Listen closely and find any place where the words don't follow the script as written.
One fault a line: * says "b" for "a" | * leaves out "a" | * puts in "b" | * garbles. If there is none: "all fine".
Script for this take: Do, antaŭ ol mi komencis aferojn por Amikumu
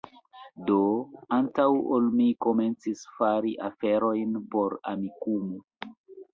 * puts in "fari"